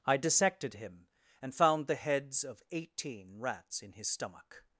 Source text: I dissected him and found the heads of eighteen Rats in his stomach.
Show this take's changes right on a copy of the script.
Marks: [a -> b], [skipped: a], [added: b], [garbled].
I dissected him and found the heads of eighteen Rats in his stomach.